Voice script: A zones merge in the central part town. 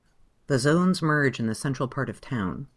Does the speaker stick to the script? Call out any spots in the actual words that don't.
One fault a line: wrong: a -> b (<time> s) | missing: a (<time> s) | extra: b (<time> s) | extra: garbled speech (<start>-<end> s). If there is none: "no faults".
wrong: A -> The (0.5 s)
extra: of (2.1 s)